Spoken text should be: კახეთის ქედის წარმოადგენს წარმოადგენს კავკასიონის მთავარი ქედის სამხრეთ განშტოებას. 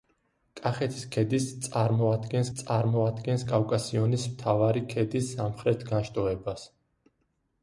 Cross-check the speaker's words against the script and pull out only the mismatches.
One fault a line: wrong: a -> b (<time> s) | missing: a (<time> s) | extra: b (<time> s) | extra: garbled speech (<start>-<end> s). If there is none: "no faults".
no faults